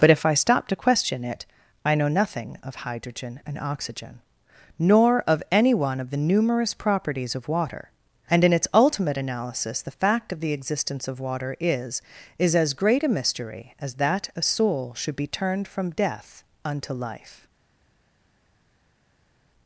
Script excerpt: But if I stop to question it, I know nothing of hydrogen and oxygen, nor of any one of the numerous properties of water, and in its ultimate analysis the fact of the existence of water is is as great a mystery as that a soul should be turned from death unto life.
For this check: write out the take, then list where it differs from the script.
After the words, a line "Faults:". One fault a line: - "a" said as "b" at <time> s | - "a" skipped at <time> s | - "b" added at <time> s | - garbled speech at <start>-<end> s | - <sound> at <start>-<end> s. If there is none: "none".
But if I stop to question it, I know nothing of hydrogen and oxygen, nor of any one of the numerous properties of water, and in its ultimate analysis the fact of the existence of water is is as great a mystery as that a soul should be turned from death unto life.
Faults:
none